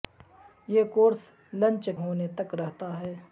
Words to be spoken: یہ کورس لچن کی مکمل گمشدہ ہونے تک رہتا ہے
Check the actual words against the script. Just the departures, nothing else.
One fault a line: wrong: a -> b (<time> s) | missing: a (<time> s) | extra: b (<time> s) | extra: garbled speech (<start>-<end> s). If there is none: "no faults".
missing: کی مکمل گمشدہ (1.9 s)